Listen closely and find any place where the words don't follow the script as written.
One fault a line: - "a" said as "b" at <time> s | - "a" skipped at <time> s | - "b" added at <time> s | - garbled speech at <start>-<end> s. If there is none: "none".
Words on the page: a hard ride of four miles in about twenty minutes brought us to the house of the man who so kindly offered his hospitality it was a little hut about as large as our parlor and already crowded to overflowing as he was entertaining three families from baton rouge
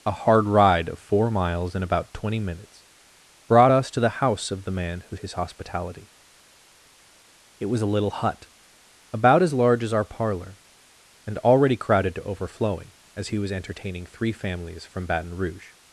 - "so kindly offered" skipped at 5.2 s